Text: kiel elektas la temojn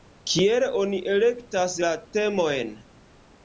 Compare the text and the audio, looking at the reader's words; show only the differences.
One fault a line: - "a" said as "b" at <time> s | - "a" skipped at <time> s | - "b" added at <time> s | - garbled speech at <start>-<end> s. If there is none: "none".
- "oni" added at 0.8 s